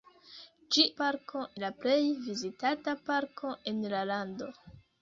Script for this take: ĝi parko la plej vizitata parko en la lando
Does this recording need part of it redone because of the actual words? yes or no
no